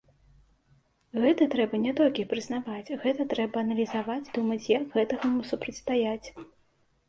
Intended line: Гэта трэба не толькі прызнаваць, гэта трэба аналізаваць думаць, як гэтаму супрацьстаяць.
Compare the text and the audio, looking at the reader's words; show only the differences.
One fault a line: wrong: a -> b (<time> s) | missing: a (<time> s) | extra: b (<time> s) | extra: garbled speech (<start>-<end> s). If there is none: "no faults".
no faults